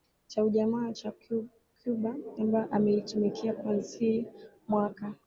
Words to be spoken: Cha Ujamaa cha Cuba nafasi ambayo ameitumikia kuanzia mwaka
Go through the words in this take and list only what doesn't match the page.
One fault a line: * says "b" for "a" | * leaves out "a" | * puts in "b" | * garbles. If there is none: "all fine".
* leaves out "nafasi"